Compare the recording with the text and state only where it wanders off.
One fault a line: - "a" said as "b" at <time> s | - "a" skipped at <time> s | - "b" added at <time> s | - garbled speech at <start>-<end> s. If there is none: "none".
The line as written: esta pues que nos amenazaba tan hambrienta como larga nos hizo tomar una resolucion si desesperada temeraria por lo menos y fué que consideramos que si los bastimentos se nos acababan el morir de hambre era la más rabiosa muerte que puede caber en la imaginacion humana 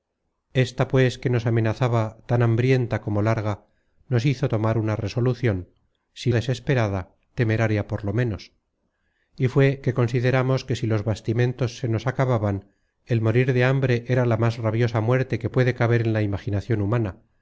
none